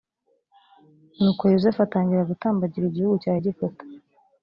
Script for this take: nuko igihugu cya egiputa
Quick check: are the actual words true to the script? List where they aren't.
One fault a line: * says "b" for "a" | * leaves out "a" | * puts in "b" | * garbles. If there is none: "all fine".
* puts in "yozefu atangira gutambagira"